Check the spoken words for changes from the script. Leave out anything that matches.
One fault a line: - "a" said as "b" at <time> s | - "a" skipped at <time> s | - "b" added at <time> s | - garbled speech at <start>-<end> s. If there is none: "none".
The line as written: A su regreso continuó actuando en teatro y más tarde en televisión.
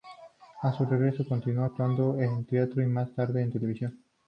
none